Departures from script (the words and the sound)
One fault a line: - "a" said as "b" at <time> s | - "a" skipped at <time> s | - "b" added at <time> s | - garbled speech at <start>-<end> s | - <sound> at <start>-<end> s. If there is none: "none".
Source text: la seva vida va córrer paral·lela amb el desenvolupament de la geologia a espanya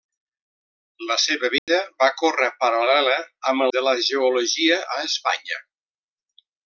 - dropout at 1.6-1.7 s
- "el desenvolupament" skipped at 3.7 s